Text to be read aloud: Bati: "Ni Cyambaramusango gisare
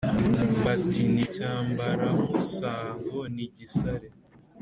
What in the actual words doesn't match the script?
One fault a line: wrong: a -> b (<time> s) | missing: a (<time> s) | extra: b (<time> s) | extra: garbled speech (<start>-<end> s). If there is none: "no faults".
extra: ni (3.3 s)